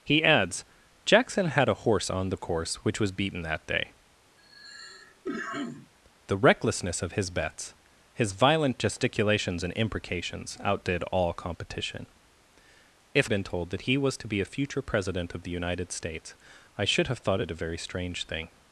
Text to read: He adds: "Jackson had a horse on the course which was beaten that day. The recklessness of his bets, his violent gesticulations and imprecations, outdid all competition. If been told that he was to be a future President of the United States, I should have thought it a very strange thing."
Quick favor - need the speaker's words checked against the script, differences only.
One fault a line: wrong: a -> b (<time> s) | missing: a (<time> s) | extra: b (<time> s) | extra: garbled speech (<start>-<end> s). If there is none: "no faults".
no faults